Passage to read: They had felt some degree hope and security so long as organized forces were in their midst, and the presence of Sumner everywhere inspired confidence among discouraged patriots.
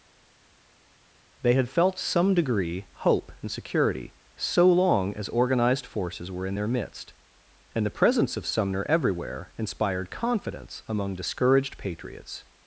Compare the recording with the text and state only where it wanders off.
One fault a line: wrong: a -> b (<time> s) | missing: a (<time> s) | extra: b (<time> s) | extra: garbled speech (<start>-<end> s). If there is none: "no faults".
no faults